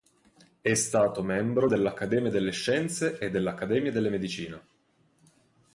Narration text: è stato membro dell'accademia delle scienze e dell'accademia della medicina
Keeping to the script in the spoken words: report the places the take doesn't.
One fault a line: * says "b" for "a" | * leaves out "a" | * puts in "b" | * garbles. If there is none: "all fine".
all fine